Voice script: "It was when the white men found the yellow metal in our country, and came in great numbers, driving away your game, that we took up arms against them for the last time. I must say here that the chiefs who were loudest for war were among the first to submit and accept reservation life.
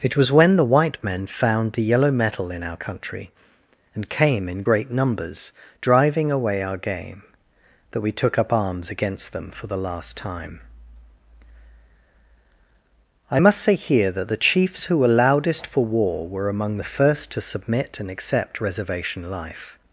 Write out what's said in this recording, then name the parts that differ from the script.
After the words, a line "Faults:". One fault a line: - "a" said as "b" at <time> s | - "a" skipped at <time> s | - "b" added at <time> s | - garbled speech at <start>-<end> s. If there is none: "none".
"It was when the white men found the yellow metal in our country, and came in great numbers, driving away our game, that we took up arms against them for the last time. I must say here that the chiefs who were loudest for war were among the first to submit and accept reservation life.
Faults:
- "your" said as "our" at 6.6 s